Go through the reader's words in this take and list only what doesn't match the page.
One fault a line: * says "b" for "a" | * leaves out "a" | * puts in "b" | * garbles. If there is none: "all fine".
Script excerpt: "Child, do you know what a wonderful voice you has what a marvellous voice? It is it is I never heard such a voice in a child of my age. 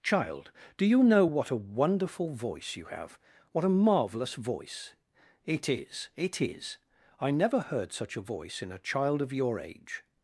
* says "have" for "has"
* says "your" for "my"